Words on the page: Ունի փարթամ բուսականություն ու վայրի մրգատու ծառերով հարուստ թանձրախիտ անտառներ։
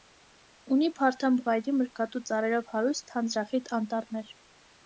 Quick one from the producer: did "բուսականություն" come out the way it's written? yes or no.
no